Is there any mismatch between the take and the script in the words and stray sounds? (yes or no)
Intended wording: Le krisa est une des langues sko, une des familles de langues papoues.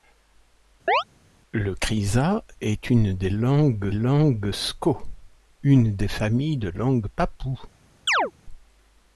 yes